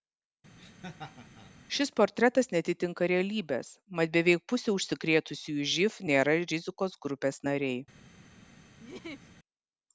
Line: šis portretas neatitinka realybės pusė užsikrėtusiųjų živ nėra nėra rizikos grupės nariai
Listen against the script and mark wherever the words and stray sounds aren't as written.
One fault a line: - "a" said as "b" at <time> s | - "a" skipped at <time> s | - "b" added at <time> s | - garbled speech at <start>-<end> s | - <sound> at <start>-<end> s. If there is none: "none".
- laugh at 0.6-1.5 s
- "mat beveik" added at 4.0 s
- "nėra" skipped at 6.4 s
- laugh at 8.8-9.3 s